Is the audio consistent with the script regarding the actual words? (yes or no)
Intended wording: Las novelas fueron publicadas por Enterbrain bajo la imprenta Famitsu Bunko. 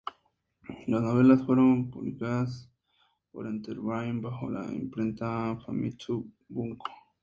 yes